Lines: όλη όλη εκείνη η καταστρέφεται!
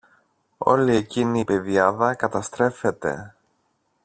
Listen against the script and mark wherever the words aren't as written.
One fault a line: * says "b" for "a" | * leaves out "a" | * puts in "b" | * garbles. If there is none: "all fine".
* leaves out "όλη"
* puts in "πεδιάδα"